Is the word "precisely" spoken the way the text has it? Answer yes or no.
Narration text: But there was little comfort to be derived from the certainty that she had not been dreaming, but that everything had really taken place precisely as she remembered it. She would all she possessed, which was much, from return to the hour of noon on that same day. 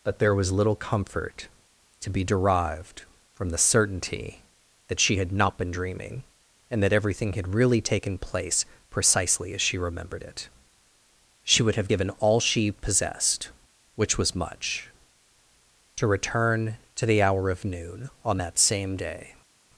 yes